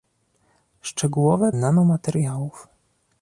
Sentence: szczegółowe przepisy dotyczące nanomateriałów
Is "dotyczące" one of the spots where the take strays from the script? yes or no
yes